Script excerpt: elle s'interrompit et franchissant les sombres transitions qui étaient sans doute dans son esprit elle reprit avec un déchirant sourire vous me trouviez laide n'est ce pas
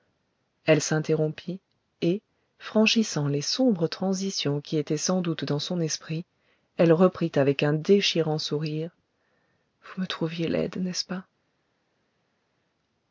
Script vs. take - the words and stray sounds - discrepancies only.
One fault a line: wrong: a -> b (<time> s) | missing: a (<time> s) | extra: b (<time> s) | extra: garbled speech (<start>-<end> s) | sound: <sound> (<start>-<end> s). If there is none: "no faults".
no faults